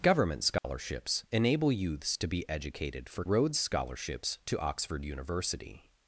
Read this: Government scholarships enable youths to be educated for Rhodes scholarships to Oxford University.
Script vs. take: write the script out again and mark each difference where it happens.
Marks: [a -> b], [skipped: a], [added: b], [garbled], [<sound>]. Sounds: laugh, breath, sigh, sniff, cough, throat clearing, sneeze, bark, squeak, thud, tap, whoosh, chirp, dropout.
Government scholarships [dropout] enable youths to be educated for Rhodes scholarships to Oxford University.